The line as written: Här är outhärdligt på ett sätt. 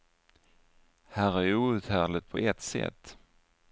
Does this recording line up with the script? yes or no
yes